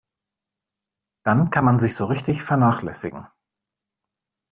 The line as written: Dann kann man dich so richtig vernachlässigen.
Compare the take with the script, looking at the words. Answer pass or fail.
fail